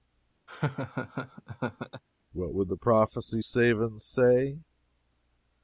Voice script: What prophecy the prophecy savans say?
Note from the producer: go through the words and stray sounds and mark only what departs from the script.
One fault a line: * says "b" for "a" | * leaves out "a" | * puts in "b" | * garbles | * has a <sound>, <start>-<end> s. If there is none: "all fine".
* has a laugh, 0.5-2.0 s
* says "would" for "prophecy"